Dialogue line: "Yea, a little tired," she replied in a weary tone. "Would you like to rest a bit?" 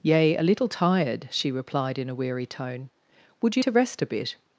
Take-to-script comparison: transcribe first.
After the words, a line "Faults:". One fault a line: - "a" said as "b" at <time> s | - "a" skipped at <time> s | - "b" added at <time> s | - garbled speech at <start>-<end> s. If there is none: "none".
"Yea, a little tired," she replied in a weary tone. "Would you to rest a bit?"
Faults:
- "like" skipped at 3.6 s